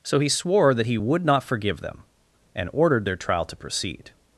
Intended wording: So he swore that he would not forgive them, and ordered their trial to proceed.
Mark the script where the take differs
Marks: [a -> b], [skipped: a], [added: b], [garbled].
So he swore that he would not forgive them, and ordered their trial to proceed.